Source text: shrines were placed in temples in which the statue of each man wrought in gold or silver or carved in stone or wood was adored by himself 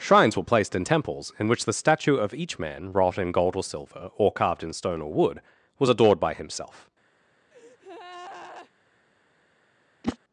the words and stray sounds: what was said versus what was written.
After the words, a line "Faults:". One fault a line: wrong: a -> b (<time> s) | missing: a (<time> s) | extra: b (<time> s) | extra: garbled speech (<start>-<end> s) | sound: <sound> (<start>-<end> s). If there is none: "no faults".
shrines were placed in temples in which the statue of each man wrought in gold or silver or carved in stone or wood was adored by himself
Faults:
sound: breath (7.5-8.7 s)
sound: whoosh (10.0-10.2 s)